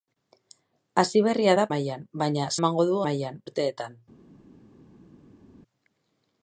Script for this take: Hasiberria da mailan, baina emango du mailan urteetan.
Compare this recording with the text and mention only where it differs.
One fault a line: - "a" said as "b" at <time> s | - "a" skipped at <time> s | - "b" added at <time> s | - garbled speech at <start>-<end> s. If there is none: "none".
none